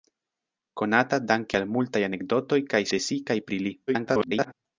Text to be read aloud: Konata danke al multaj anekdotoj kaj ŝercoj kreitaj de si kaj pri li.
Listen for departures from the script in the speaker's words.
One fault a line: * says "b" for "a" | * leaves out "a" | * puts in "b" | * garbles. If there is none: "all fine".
* leaves out "ŝercoj kreitaj"
* garbles